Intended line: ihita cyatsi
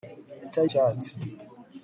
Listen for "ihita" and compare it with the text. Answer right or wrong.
right